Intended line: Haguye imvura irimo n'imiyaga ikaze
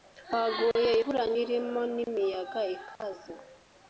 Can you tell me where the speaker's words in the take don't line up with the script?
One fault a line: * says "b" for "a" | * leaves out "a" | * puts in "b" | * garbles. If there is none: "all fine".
all fine